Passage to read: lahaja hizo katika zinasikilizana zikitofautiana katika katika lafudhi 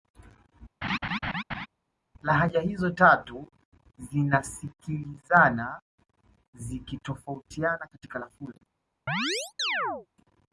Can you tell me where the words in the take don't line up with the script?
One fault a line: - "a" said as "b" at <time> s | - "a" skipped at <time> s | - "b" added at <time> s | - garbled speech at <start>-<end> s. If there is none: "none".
- "katika" said as "tatu" at 2.9 s
- "katika" skipped at 8.2 s